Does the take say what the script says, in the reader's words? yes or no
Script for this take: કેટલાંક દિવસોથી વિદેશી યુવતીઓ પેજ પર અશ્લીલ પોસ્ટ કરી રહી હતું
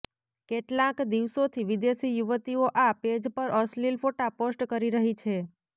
no